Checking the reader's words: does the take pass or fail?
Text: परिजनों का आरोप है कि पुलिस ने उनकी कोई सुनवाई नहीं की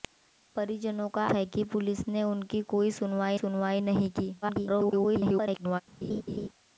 fail